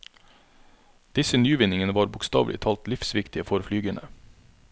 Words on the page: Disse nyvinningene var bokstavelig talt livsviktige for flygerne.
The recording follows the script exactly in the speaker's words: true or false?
true